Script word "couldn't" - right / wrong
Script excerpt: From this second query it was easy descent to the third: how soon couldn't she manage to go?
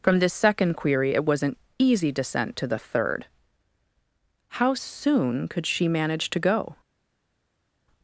wrong